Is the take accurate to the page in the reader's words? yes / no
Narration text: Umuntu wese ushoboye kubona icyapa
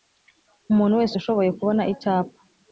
yes